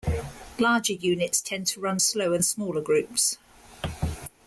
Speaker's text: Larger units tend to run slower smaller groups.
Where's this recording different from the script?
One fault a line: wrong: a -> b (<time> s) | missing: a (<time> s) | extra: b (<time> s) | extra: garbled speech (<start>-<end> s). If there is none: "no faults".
no faults